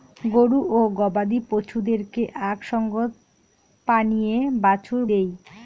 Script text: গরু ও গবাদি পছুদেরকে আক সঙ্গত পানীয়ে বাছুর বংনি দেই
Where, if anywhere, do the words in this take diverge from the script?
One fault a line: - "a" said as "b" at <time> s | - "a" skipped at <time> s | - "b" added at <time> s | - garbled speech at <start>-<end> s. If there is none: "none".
- "বংনি" skipped at 5.0 s